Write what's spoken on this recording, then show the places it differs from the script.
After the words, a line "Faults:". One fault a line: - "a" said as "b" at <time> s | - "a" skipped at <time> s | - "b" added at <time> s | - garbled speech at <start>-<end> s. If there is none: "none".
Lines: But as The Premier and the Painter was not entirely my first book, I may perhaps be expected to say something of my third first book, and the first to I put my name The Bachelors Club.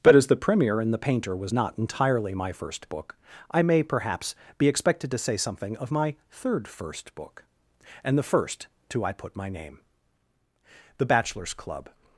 But as The Premier and the Painter was not entirely my first book, I may perhaps be expected to say something of my third first book, and the first to I put my name The Bachelors Club.
Faults:
none